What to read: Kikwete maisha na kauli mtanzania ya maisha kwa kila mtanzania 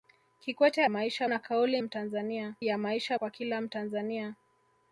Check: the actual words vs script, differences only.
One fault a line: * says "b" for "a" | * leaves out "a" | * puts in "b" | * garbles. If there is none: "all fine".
all fine